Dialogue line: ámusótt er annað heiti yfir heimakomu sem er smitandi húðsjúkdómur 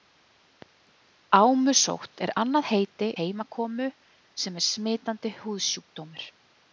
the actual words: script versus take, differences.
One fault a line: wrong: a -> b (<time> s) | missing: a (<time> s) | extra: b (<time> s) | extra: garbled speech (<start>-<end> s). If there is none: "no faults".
missing: yfir (3.1 s)